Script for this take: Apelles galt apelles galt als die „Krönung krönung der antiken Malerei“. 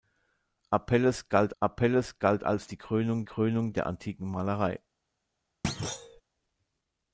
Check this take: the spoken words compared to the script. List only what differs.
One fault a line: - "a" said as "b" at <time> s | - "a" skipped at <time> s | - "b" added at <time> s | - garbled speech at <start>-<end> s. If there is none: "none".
none